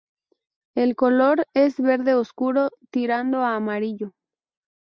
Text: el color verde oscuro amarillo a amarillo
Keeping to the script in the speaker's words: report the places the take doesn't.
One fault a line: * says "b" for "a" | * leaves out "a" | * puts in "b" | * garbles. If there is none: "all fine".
* puts in "es"
* says "tirando" for "amarillo"